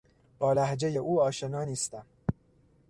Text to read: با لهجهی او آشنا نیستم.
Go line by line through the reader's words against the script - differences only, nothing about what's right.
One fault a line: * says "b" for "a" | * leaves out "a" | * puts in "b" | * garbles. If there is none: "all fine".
all fine